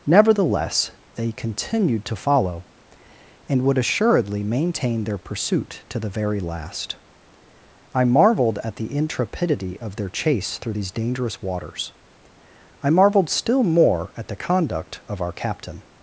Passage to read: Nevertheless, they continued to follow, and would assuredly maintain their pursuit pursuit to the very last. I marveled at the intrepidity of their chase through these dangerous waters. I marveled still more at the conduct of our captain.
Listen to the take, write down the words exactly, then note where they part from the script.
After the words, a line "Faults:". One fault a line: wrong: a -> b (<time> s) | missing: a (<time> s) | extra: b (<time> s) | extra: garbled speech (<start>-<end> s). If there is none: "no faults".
Nevertheless, they continued to follow, and would assuredly maintain their pursuit to the very last. I marveled at the intrepidity of their chase through these dangerous waters. I marveled still more at the conduct of our captain.
Faults:
missing: pursuit (5.8 s)